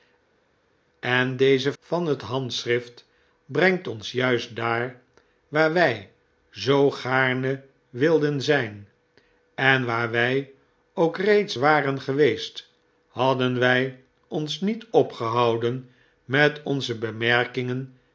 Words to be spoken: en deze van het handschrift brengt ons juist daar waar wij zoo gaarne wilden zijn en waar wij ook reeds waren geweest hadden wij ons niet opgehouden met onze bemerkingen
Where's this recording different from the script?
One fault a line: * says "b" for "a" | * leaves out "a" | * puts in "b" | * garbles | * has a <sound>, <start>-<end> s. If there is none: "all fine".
all fine